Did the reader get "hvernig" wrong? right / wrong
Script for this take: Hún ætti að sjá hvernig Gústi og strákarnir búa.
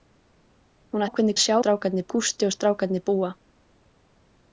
wrong